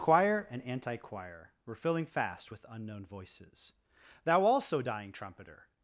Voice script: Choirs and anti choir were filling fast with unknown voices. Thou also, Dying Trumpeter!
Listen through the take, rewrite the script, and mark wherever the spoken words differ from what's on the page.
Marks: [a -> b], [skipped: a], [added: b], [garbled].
[Choirs -> Choir] and anti choir were filling fast with unknown voices. Thou also, Dying Trumpeter!